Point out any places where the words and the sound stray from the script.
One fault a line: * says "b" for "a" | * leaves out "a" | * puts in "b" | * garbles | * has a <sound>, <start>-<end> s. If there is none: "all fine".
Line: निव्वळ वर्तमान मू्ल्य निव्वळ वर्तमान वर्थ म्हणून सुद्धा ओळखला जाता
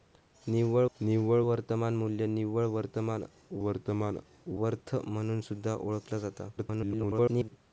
* puts in "निव्वळ"
* puts in "वर्तमान"
* garbles